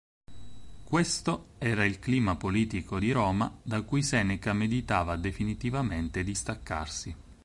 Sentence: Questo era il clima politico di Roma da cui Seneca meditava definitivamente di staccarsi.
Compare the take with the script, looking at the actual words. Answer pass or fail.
pass